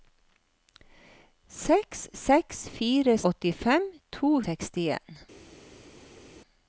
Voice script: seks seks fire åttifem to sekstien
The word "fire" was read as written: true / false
true